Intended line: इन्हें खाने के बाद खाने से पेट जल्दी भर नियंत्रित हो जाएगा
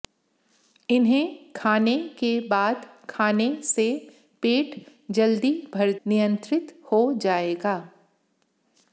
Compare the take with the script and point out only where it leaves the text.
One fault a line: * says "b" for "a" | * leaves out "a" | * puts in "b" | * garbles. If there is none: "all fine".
all fine